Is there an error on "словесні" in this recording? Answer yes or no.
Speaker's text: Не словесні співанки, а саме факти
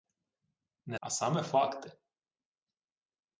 yes